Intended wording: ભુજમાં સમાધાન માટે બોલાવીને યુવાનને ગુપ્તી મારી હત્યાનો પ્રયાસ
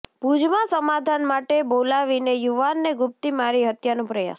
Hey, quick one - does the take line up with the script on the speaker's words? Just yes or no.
yes